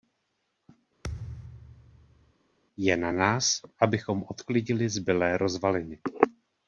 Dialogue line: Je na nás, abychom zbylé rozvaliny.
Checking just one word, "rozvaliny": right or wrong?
right